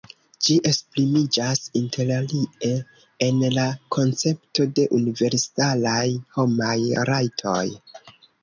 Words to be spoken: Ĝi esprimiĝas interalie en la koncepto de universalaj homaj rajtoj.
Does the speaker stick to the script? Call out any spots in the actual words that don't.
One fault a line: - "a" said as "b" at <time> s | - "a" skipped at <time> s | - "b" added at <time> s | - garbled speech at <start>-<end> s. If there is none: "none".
none